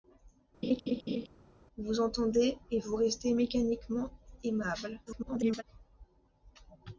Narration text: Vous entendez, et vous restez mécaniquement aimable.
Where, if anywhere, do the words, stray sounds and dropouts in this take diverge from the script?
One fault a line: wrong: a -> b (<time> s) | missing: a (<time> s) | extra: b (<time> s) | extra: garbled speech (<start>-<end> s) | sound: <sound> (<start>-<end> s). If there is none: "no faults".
sound: laugh (0.6-1.3 s)
extra: garbled speech (5.1-5.6 s)